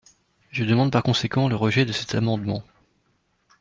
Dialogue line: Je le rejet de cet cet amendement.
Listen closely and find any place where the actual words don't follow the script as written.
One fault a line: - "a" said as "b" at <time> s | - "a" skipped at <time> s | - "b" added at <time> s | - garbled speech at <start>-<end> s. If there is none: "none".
- "demande par conséquent" added at 0.6 s
- "cet" skipped at 2.1 s